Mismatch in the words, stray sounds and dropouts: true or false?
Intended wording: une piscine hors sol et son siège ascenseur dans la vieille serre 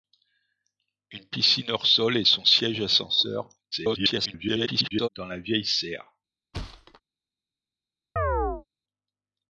true